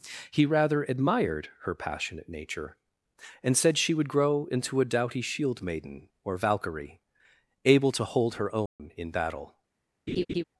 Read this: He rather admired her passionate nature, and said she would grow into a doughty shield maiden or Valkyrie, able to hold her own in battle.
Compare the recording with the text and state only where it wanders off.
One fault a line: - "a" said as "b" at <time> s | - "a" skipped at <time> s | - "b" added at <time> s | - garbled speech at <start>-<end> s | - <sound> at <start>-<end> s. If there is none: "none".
- dropout at 8.7-8.8 s
- laugh at 10.1-10.4 s